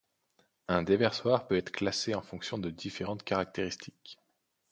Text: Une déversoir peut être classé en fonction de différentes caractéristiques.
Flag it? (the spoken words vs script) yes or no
yes